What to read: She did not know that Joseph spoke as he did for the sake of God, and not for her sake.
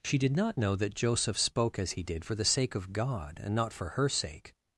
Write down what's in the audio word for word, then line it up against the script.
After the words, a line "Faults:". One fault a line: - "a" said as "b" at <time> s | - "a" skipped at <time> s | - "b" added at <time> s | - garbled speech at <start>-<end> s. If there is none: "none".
She did not know that Joseph spoke as he did for the sake of God, and not for her sake.
Faults:
none